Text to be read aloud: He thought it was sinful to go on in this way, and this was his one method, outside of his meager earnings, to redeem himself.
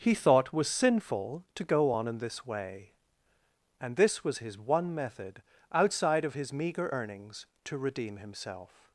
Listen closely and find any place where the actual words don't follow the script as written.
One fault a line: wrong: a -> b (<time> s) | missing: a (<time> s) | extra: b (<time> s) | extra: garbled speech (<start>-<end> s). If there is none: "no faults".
missing: it (0.5 s)